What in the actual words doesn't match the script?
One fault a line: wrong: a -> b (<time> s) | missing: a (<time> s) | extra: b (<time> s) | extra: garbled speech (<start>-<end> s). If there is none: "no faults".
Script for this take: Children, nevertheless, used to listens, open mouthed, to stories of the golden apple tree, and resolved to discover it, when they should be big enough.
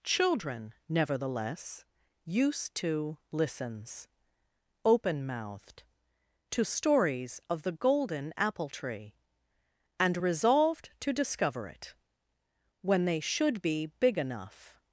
no faults